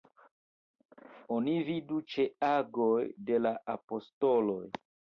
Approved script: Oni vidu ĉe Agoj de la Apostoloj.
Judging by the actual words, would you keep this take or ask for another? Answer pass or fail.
pass